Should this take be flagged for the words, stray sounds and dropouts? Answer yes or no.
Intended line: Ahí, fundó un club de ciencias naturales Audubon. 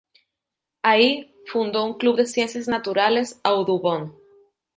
no